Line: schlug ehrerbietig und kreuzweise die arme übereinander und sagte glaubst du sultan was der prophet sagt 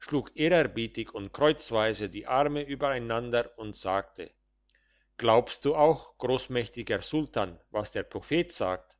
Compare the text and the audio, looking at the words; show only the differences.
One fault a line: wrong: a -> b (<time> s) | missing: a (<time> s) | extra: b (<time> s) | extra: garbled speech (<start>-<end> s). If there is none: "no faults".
extra: auch grossmächtiger (5.7 s)